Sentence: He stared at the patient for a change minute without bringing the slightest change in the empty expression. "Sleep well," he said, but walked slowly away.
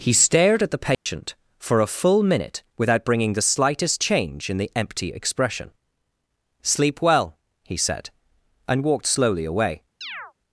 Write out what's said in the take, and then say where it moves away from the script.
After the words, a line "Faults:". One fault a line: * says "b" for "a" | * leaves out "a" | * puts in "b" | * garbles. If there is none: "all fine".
He stared at the patient for a full minute without bringing the slightest change in the empty expression. "Sleep well," he said, and walked slowly away.
Faults:
* says "full" for "change"
* says "and" for "but"